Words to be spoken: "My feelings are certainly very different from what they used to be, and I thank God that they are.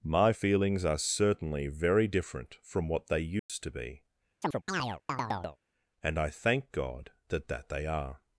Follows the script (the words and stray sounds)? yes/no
no